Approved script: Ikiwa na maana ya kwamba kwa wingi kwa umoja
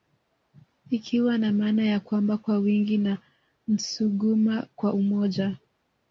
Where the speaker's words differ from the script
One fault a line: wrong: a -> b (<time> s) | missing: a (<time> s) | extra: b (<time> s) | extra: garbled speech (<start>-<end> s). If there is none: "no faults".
extra: na Nsuguma (3.0 s)